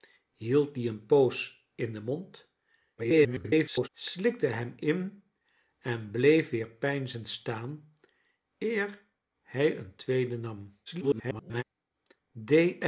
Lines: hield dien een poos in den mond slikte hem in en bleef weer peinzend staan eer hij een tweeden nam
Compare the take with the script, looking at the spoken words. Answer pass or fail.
fail